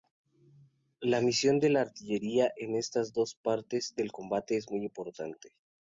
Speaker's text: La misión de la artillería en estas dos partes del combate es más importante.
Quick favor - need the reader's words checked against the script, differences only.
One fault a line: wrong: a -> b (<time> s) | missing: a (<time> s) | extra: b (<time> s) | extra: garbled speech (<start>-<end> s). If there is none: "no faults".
wrong: más -> muy (4.7 s)